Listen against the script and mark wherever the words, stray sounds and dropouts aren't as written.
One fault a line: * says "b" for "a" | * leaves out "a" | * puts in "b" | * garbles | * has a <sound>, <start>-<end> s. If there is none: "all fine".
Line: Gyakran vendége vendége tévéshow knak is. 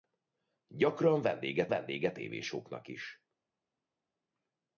all fine